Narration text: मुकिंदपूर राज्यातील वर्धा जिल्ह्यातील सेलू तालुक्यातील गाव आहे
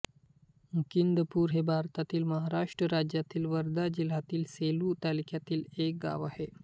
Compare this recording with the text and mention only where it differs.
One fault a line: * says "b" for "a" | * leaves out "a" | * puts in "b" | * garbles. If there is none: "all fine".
* puts in "हे भारतातील महाराष्ट्र"
* puts in "एक"